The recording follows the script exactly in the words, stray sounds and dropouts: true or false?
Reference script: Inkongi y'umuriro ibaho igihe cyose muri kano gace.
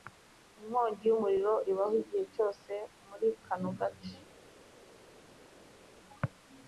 true